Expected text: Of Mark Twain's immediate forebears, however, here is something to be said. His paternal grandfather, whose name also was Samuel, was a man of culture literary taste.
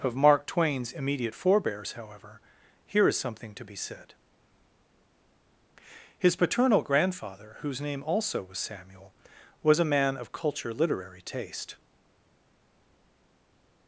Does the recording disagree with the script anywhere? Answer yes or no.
no